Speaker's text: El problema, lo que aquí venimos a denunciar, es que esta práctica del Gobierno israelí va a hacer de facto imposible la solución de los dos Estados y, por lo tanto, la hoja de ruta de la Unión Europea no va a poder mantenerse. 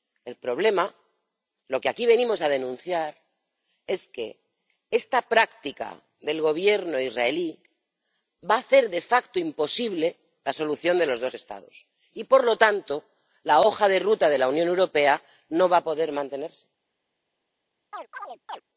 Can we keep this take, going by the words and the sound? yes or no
no